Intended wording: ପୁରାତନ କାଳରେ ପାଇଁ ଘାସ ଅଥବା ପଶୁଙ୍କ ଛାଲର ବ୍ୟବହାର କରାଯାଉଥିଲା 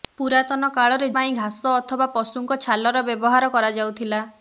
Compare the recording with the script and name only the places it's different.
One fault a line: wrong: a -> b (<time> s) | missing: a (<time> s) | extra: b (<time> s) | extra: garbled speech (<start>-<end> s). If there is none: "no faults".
no faults